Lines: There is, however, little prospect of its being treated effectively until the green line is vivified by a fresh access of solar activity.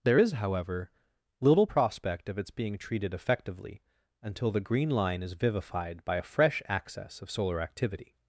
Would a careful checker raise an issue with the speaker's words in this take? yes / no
no